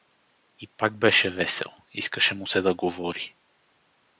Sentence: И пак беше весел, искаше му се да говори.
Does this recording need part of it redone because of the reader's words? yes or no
no